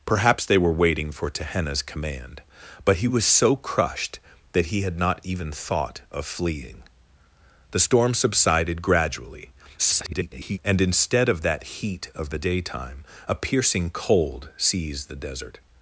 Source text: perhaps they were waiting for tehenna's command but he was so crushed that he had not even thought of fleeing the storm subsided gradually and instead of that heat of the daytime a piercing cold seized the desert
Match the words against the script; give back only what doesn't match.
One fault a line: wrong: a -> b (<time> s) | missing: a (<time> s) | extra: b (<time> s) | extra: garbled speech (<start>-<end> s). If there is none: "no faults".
extra: garbled speech (9.8-10.6 s)